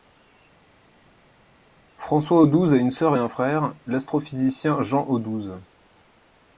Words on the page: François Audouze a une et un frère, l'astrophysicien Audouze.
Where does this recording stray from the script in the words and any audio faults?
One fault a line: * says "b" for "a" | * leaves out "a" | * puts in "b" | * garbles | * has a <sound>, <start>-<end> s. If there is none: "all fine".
* puts in "sœur"
* puts in "Jean"